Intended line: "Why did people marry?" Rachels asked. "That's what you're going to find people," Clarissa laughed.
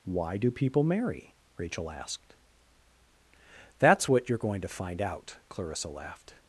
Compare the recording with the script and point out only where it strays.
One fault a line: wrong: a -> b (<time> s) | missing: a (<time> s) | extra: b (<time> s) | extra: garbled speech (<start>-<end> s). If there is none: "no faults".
wrong: did -> do (0.4 s)
wrong: Rachels -> Rachel (1.6 s)
wrong: people -> out (5.0 s)